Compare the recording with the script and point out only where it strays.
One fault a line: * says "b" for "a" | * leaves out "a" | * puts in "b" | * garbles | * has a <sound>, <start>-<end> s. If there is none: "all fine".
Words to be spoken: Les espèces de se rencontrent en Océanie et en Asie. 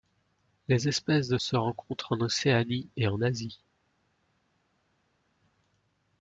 all fine